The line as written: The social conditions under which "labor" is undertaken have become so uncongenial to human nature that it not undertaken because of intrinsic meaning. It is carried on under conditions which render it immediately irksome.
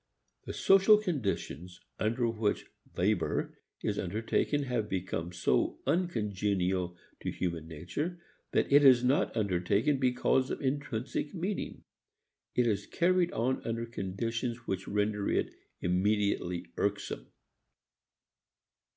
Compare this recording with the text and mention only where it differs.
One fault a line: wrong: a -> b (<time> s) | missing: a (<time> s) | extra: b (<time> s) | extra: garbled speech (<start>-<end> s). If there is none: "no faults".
extra: is (8.8 s)